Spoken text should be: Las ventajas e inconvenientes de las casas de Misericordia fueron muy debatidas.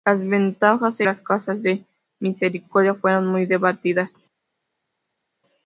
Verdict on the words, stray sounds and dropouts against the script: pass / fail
fail